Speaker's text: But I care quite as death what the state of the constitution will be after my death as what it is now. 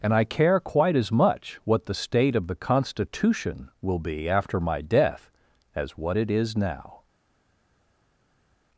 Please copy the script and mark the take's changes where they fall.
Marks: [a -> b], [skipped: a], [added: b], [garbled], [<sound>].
[But -> And] I care quite as [death -> much] what the state of the constitution will be after my death as what it is now.